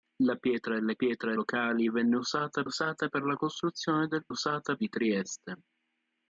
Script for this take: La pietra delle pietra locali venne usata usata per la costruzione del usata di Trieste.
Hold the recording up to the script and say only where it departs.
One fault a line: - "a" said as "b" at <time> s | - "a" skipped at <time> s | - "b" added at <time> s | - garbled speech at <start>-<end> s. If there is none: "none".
none